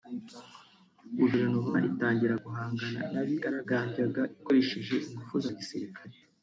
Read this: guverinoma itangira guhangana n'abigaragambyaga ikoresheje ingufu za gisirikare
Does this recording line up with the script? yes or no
yes